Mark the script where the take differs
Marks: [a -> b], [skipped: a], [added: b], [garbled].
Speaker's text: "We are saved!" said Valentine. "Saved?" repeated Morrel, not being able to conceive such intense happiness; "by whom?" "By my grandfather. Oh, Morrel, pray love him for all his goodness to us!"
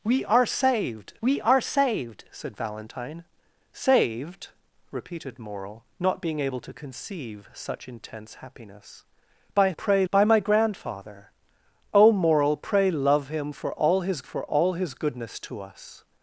"We are saved!" [added: we are saved] said Valentine. "Saved?" repeated Morrel, not being able to conceive such intense happiness; "by [whom?" -> pray] "By my grandfather. Oh, Morrel, pray love him for all his [added: for all his] goodness to us!"